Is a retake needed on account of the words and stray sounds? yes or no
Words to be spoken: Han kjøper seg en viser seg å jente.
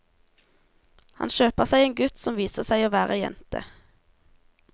yes